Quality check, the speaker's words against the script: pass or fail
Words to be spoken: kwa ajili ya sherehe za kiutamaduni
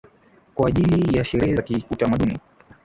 pass